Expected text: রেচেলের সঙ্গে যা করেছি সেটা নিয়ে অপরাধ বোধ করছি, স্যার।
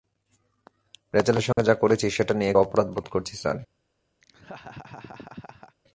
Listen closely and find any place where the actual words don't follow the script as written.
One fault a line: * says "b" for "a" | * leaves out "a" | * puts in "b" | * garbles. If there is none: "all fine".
all fine